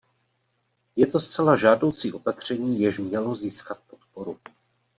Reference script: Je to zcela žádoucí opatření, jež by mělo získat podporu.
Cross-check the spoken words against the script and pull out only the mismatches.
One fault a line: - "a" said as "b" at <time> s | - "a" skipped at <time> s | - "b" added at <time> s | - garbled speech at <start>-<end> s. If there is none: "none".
- "by" skipped at 3.0 s